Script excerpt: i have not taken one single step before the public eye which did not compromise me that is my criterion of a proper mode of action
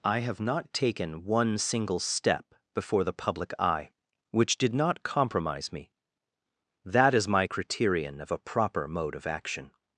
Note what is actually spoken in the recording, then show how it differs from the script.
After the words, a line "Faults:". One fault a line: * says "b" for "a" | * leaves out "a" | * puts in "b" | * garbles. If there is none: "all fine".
i have not taken one single step before the public eye which did not compromise me that is my criterion of a proper mode of action
Faults:
all fine